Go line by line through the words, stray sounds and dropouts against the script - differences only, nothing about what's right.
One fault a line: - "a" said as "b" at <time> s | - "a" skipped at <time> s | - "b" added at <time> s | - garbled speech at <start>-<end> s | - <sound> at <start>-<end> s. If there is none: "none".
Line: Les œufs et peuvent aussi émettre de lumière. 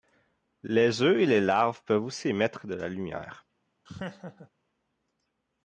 - "les larves" added at 1.3 s
- "la" added at 2.7 s
- laugh at 3.9-4.5 s